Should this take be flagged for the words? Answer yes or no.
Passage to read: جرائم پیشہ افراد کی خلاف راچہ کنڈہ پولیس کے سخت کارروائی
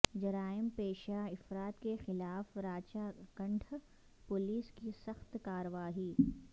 yes